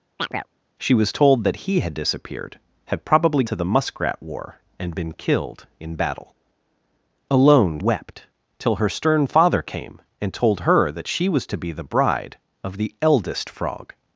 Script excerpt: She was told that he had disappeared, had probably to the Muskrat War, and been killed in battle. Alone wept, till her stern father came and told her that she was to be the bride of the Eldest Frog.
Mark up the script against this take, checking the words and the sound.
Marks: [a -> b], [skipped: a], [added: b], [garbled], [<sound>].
[chirp] She was told that he had disappeared, had probably to the Muskrat War, and been killed in battle. Alone wept, till her stern father came and told her that she was to be the bride of the Eldest Frog.